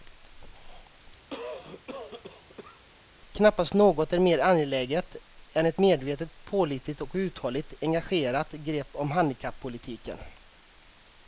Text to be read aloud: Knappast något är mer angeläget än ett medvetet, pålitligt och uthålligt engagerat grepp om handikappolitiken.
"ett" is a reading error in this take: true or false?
false